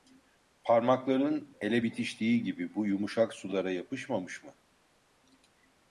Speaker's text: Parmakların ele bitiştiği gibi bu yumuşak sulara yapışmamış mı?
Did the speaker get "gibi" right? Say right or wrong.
right